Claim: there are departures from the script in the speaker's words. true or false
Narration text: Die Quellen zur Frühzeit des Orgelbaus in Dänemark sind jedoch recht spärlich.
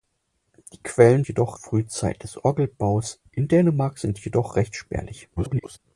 true